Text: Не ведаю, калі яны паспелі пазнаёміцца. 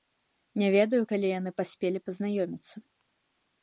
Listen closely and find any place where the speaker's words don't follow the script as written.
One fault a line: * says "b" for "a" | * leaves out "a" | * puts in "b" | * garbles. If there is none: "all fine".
all fine